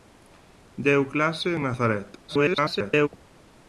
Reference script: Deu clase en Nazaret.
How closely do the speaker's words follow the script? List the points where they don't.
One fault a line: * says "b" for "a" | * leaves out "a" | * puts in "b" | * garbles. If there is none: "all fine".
* garbles